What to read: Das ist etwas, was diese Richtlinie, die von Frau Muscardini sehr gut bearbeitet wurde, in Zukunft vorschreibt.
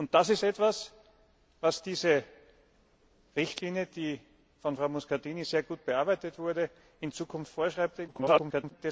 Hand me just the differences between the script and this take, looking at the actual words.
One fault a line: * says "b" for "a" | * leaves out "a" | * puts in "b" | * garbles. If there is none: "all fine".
* garbles